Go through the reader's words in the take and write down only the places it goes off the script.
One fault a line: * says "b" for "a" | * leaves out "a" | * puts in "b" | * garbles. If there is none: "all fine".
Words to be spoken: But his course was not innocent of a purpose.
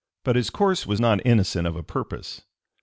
all fine